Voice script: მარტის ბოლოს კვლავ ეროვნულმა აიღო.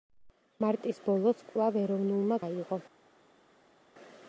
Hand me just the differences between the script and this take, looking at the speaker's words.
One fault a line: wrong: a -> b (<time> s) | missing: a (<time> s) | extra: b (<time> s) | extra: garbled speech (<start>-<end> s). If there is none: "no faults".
no faults